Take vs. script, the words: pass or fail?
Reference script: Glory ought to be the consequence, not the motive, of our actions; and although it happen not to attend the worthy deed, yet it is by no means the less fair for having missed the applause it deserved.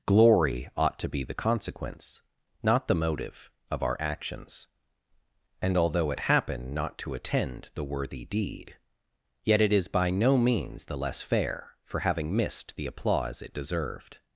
pass